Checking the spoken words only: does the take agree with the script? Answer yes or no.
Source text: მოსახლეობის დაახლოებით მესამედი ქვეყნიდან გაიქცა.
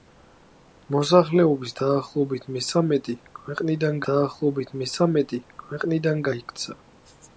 no